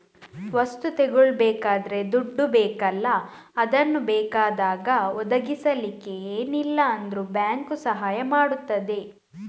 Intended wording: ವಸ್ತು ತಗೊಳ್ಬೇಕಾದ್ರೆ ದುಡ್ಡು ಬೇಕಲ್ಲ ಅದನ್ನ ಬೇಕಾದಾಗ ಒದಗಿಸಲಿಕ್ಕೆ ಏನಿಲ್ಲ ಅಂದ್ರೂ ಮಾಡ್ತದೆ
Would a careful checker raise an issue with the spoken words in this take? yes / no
yes